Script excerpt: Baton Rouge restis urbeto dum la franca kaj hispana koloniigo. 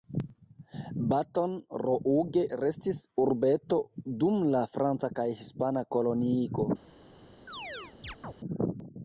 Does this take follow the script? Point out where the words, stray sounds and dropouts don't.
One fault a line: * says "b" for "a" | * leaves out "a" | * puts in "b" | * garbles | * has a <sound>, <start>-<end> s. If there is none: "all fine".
* has a chirp, 7.5-8.3 s